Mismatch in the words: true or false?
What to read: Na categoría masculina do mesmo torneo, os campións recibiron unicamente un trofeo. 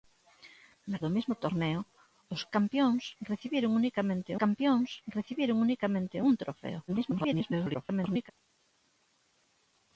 true